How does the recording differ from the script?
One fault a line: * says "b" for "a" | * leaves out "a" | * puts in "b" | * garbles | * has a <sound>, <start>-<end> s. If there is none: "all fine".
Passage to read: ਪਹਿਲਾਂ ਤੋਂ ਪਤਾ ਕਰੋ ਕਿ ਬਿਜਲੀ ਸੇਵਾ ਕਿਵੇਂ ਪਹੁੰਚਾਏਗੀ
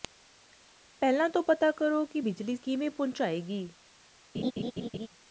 * leaves out "ਸੇਵਾ"
* has a laugh, 4.3-5.1 s